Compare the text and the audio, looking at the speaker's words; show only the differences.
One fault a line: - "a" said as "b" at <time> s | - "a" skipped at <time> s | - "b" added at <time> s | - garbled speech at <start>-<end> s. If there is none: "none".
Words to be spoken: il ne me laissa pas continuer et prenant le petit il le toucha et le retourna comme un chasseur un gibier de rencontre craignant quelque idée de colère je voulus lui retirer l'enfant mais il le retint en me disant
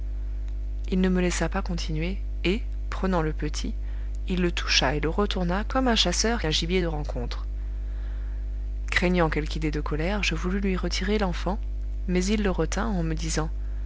none